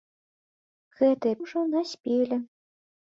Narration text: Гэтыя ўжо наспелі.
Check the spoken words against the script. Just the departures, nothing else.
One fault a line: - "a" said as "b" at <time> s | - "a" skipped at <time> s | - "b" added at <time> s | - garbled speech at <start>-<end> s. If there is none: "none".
none